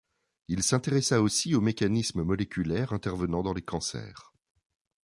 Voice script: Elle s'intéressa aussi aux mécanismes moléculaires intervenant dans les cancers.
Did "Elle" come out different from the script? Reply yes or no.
yes